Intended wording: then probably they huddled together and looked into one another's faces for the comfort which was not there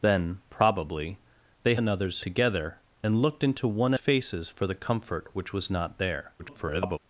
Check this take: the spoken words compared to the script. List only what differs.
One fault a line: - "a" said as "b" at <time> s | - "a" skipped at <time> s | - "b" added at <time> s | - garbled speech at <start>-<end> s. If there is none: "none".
- "huddled" said as "another's" at 1.7 s
- "another's" skipped at 3.9 s
- garbled speech at 6.4-7.0 s